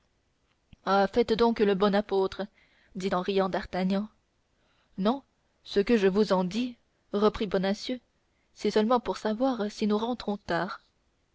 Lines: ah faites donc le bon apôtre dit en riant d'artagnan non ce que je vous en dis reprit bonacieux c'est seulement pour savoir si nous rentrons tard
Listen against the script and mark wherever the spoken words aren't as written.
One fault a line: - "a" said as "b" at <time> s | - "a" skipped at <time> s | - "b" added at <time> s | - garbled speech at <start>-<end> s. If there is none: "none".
none